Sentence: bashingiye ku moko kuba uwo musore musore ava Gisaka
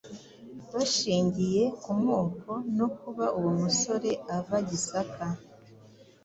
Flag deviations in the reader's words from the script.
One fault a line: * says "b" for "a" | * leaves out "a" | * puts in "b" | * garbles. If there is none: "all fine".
* puts in "no"
* leaves out "musore"